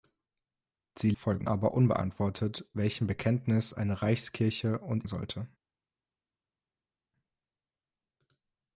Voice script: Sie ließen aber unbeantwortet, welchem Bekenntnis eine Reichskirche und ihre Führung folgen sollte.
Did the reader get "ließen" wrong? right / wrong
wrong